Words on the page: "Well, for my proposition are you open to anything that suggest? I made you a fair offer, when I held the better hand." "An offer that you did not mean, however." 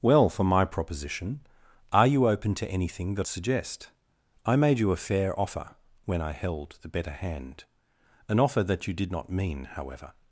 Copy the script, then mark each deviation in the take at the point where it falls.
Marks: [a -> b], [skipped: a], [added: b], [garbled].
"Well, for my proposition are you open to anything that suggest? I made you a fair offer, when I held the better hand." "An offer that you did not mean, however."